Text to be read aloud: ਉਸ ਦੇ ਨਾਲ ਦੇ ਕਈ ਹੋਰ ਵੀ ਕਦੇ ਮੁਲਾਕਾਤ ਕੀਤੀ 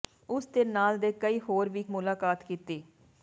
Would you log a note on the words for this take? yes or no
yes